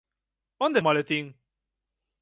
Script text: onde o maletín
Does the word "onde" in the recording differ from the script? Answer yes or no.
no